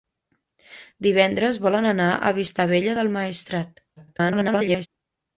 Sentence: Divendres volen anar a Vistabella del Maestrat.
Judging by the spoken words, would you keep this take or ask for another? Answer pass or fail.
fail